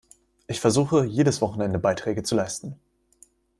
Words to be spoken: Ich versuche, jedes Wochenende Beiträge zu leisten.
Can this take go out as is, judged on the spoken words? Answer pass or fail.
pass